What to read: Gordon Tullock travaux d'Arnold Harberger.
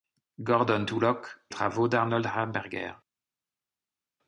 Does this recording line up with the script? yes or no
yes